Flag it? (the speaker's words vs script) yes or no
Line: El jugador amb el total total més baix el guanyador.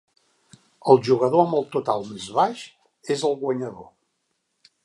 yes